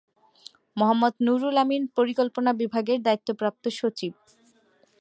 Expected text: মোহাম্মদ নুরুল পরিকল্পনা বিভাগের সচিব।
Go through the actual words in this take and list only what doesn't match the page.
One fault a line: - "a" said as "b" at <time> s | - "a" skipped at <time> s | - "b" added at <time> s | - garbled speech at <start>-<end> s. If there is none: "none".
- "আমিন" added at 1.6 s
- "দায়িত্বপ্রাপ্ত" added at 3.0 s